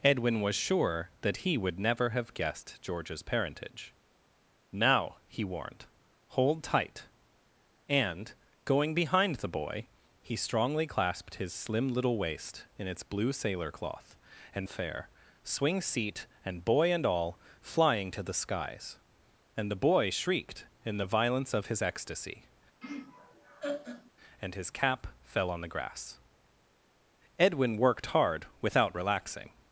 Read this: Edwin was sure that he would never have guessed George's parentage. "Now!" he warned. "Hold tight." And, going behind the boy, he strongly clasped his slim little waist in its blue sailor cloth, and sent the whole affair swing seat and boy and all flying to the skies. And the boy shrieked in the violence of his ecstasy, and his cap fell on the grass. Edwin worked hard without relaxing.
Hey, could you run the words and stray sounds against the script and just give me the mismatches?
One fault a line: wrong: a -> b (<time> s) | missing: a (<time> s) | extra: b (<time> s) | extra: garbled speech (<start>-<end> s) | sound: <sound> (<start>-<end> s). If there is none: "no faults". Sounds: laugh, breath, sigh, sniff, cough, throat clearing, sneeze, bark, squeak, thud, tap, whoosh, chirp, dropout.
missing: sent the whole (14.7 s)
sound: laugh (22.8-24.1 s)